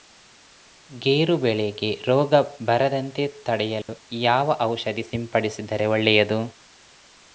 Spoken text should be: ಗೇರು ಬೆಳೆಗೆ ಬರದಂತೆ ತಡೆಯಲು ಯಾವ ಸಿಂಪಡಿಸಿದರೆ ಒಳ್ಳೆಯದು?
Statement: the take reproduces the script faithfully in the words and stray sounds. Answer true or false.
false